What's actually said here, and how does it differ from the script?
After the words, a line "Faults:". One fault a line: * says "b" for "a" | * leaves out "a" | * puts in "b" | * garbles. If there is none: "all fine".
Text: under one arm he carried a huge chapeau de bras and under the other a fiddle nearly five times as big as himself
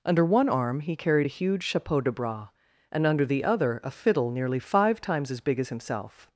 under one arm he carried a huge chapeau de bras and under the other a fiddle nearly five times as big as himself
Faults:
all fine